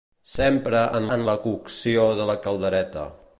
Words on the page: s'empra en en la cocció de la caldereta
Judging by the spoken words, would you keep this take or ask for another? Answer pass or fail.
pass